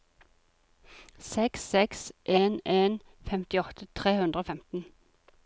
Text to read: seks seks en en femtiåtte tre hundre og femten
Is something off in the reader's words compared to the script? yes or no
no